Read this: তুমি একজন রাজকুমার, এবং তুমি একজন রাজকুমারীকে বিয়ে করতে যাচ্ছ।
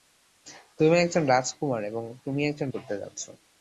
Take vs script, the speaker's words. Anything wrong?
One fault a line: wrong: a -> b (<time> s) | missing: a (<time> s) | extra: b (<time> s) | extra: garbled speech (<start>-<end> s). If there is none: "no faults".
missing: রাজকুমারীকে বিয়ে (2.7 s)